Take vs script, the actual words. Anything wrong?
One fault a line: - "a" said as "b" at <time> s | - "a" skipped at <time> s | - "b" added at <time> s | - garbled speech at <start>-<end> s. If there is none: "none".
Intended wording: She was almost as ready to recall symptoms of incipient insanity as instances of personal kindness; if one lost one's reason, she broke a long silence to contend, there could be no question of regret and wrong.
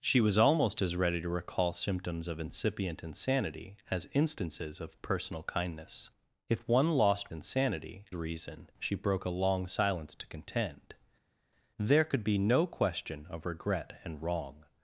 - "one's" said as "insanity" at 7.3 s